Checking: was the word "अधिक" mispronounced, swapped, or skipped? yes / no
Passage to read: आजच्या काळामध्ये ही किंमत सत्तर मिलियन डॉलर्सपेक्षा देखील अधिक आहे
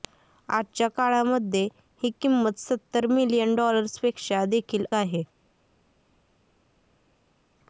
yes